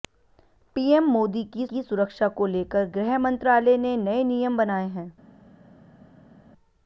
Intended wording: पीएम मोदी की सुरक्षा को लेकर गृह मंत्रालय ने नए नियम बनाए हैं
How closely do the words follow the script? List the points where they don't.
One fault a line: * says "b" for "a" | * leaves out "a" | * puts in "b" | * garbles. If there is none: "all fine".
* puts in "की"